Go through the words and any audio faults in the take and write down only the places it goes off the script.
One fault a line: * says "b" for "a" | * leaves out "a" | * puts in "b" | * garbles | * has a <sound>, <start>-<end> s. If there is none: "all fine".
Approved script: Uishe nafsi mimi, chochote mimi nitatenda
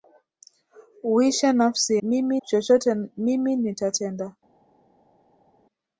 all fine